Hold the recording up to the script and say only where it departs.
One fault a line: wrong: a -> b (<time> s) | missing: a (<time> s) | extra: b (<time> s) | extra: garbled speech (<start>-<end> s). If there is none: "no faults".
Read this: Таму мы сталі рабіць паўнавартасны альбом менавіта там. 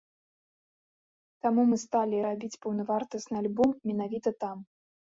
no faults